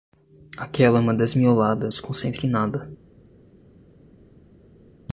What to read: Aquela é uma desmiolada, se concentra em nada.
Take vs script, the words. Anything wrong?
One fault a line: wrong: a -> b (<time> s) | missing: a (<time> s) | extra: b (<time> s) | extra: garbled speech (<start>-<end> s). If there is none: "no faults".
no faults